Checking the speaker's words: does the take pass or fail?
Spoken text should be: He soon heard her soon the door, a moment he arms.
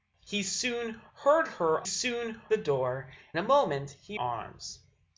pass